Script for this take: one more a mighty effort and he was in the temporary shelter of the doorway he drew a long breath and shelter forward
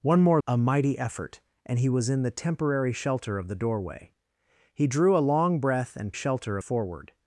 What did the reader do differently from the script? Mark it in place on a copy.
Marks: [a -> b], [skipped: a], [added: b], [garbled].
one more a mighty effort and he was in the temporary shelter of the doorway he drew a long breath and shelter forward